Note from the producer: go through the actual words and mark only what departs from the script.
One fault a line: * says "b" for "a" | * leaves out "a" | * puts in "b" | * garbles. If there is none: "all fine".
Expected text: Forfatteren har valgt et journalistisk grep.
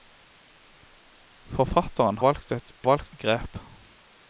* leaves out "har"
* says "valgt" for "journalistisk"